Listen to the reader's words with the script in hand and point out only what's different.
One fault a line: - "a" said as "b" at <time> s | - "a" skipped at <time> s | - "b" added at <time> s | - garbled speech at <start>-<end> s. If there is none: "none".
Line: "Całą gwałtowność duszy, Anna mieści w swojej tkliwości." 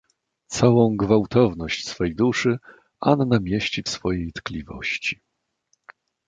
- "swej" added at 1.9 s